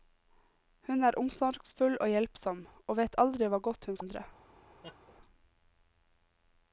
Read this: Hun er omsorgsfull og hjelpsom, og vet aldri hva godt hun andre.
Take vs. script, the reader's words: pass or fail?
pass